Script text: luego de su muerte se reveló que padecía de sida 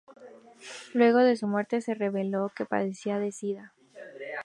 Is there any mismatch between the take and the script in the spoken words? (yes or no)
no